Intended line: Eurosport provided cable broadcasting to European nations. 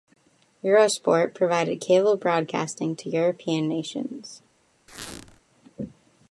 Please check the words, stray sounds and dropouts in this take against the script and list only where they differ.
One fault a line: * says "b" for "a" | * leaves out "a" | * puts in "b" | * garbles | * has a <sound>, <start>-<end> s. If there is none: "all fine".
* has a squeak, 4.9-5.4 s